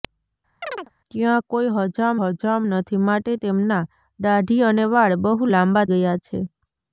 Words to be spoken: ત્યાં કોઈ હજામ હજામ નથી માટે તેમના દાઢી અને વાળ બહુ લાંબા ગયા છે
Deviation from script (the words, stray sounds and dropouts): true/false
true